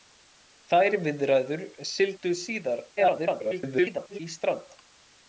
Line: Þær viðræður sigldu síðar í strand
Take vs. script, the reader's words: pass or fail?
fail